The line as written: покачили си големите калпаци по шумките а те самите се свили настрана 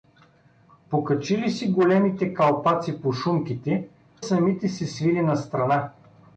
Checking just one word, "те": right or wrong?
wrong